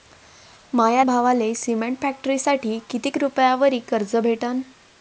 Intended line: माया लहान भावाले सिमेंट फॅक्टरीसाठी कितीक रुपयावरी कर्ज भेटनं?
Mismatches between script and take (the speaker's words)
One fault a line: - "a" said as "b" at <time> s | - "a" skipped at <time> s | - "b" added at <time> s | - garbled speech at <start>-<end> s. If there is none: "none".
- "लहान" skipped at 1.0 s